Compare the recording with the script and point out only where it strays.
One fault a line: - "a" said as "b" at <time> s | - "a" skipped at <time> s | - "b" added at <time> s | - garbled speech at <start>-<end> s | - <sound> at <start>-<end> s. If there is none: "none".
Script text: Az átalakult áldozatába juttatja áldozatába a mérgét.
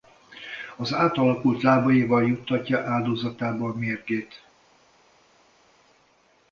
- "áldozatába" said as "lábaival" at 1.6 s